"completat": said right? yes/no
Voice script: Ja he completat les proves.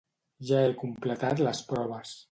yes